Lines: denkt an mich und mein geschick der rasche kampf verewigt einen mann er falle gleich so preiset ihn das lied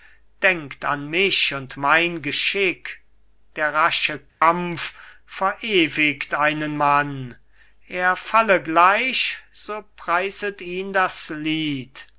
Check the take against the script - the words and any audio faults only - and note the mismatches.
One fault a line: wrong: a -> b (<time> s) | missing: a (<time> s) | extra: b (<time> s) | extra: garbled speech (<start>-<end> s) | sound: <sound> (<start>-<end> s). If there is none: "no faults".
sound: dropout (4.3-4.4 s)